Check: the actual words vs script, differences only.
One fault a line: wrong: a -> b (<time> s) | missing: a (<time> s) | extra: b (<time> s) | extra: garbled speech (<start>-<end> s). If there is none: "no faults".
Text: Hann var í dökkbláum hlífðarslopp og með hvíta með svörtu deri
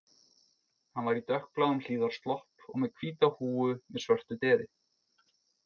extra: húfu (3.3 s)